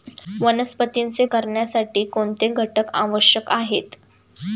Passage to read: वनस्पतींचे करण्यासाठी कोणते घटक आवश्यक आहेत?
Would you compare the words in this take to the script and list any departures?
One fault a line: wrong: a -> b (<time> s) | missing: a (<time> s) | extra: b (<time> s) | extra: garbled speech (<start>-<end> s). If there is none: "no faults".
no faults